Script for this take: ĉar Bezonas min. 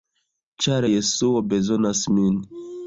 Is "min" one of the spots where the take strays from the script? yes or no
no